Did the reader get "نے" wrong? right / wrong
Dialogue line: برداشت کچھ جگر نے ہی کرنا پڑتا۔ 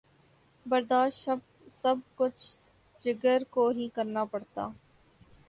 wrong